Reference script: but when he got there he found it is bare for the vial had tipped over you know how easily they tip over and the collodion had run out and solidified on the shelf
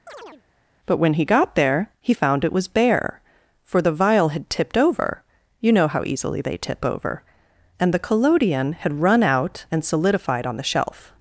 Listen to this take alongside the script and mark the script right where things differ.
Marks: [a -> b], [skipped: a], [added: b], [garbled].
but when he got there he found it [is -> was] bare for the vial had tipped over you know how easily they tip over and the collodion had run out and solidified on the shelf